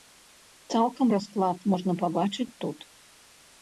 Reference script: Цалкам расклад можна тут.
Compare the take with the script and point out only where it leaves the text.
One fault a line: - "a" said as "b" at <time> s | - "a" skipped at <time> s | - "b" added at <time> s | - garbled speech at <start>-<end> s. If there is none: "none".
- "пабачыць" added at 2.0 s